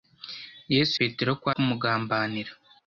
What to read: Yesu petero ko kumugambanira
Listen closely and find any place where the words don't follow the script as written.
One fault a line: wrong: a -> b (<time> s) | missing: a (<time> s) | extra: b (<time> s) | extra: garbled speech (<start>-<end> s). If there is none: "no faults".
no faults